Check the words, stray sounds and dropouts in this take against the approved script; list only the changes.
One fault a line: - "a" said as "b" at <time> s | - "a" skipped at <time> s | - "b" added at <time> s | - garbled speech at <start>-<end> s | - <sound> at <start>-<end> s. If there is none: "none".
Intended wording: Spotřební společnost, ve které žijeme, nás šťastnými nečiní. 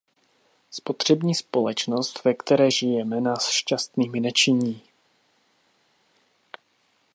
none